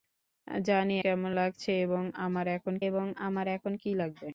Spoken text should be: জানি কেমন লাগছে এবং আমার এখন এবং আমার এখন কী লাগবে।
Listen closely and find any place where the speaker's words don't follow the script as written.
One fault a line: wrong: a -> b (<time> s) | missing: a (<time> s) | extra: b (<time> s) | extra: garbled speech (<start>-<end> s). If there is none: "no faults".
no faults